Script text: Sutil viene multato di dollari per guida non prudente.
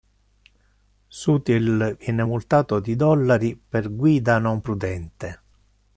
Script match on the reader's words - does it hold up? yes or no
yes